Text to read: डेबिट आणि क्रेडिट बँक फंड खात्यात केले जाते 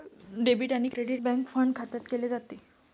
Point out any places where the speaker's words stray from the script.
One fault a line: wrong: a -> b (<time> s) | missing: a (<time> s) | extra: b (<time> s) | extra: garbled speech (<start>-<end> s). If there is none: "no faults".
no faults